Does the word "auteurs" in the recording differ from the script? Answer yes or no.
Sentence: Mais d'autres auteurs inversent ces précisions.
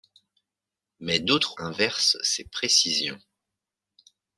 yes